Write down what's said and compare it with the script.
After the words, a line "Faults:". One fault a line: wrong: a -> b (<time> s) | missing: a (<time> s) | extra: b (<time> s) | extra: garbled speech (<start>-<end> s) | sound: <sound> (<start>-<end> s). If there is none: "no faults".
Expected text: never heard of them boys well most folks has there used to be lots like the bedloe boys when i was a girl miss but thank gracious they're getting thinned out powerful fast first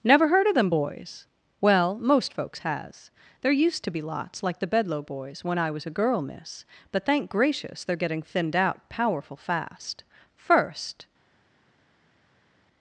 never heard of them boys well most folks has there used to be lots like the bedloe boys when i was a girl miss but thank gracious they're getting thinned out powerful fast first
Faults:
no faults